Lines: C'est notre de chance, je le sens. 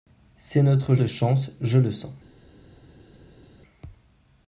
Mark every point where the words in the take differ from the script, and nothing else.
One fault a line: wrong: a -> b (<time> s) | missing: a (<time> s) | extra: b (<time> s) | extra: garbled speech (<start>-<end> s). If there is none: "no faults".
no faults